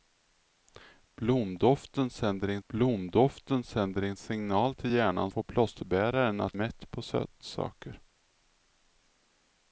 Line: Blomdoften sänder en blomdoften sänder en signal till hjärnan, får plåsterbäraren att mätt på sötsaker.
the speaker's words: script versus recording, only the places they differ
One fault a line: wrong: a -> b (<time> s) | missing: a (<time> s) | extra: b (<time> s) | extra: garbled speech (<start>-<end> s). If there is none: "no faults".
no faults